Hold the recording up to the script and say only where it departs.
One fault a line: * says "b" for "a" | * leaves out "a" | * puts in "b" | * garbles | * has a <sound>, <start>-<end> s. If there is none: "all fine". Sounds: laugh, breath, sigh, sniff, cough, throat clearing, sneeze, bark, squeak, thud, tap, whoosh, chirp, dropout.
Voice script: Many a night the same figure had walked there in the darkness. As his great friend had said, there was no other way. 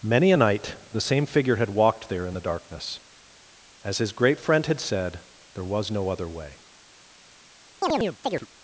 * has a chirp, 7.8-8.5 s